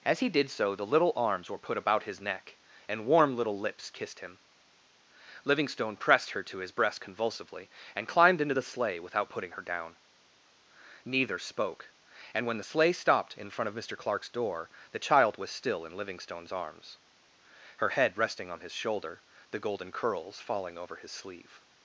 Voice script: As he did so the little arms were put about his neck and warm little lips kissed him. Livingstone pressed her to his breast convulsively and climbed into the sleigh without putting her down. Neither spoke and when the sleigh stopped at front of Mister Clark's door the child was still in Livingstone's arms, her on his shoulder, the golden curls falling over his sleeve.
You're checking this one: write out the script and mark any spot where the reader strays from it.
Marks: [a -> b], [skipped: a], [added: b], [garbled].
As he did so the little arms were put about his neck and warm little lips kissed him. Livingstone pressed her to his breast convulsively and climbed into the sleigh without putting her down. Neither spoke and when the sleigh stopped [at -> in] front of Mister Clark's door the child was still in Livingstone's arms, her [added: head resting] on his shoulder, the golden curls falling over his sleeve.